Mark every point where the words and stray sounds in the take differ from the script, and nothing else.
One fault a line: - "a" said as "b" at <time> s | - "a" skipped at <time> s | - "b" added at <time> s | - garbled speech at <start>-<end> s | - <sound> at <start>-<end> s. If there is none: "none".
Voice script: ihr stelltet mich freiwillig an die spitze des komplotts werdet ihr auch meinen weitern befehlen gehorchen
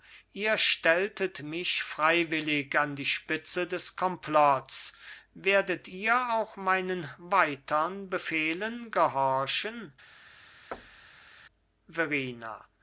- thud at 10.7-11.3 s